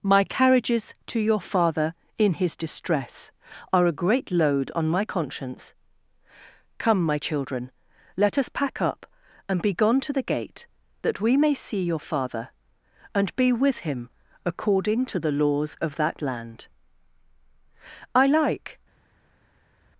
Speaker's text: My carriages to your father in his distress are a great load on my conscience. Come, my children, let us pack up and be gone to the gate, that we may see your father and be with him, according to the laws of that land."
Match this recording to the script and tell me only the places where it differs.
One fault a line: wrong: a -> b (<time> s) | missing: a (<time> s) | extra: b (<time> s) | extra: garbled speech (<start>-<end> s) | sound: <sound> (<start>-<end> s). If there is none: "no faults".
extra: I like (18.2 s)